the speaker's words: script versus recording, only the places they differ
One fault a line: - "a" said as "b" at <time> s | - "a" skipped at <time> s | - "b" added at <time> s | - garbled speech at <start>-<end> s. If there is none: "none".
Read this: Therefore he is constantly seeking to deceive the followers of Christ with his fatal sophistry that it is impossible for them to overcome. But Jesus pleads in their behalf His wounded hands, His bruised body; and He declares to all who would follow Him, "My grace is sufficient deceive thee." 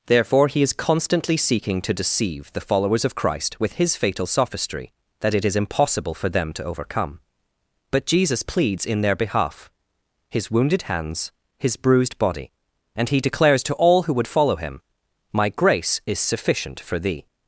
- "deceive" said as "for" at 16.8 s